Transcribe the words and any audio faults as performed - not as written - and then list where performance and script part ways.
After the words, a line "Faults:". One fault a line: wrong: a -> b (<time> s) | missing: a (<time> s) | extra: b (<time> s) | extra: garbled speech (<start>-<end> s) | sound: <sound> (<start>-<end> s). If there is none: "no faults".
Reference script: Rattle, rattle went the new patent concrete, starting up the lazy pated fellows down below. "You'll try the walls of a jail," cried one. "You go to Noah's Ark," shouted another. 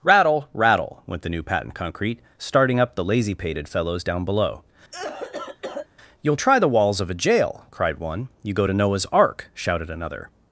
Rattle, rattle went the new patent concrete, starting up the lazy pated fellows down below. "You'll try the walls of a jail," cried one. "You go to Noah's Ark," shouted another.
Faults:
sound: cough (4.9-5.9 s)